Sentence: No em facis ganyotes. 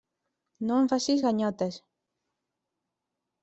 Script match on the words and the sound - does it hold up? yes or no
yes